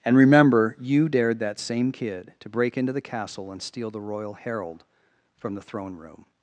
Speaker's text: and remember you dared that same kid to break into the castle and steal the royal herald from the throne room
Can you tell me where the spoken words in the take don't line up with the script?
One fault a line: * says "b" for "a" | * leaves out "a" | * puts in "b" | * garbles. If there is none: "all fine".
all fine